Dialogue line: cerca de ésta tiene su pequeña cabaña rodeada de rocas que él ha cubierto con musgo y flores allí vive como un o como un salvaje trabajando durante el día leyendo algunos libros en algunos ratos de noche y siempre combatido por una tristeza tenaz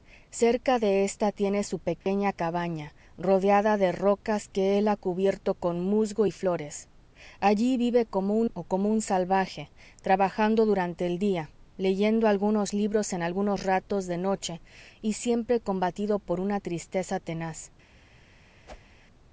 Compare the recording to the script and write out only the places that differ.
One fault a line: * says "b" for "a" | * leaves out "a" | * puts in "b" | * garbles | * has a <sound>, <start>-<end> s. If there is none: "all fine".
* has a dropout, 2.0-2.1 s
* has a whoosh, 18.7-19.0 s